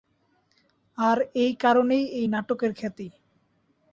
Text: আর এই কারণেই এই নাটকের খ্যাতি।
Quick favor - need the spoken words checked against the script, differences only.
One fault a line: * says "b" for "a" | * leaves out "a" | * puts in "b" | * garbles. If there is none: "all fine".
all fine